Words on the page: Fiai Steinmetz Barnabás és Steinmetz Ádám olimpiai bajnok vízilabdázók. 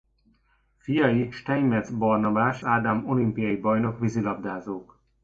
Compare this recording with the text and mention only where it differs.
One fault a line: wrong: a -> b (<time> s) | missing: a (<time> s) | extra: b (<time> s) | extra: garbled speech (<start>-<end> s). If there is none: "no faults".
missing: és Steinmetz (2.6 s)